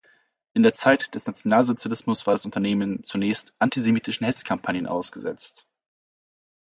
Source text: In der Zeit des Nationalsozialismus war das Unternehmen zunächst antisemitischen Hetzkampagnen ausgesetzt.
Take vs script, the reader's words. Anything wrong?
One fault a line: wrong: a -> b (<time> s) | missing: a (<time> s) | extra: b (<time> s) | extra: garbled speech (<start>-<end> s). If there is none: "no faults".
no faults